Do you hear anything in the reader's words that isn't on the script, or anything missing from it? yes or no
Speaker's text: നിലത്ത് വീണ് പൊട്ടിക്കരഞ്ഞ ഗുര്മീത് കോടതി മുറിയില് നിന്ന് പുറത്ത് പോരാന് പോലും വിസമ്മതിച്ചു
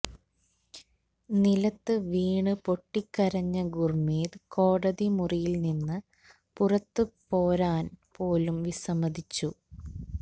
no